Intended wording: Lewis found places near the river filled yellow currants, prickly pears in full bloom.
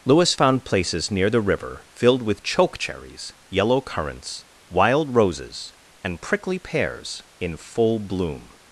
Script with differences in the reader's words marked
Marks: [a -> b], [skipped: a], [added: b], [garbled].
Lewis found places near the river filled [added: with choke cherries] yellow currants, [added: wild roses and] prickly pears in full bloom.